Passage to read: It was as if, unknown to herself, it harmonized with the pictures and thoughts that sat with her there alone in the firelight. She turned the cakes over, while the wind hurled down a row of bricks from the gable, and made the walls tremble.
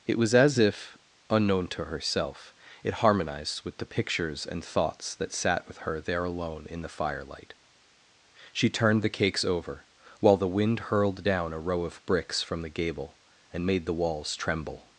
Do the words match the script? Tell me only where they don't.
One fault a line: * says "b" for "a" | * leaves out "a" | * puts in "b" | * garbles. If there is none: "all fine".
all fine